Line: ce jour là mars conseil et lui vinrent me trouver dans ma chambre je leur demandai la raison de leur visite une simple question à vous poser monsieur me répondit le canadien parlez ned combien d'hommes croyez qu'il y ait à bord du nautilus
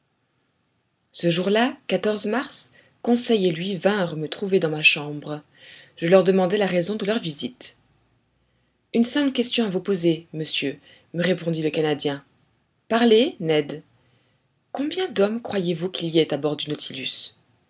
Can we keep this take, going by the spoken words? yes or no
no